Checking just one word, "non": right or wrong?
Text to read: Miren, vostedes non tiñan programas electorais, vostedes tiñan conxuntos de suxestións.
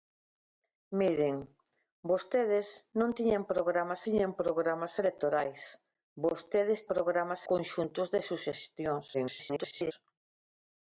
right